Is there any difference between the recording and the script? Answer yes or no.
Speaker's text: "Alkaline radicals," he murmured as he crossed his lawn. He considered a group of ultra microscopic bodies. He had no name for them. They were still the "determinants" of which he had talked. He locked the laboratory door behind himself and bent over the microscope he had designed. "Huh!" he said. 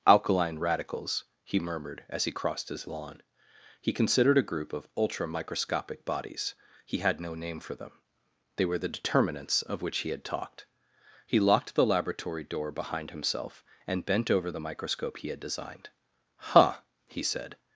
yes